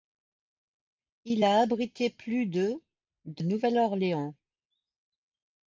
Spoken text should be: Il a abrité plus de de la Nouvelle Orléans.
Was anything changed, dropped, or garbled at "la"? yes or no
yes